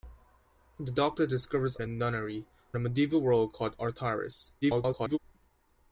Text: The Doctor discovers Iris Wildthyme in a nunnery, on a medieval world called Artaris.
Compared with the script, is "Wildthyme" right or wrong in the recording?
wrong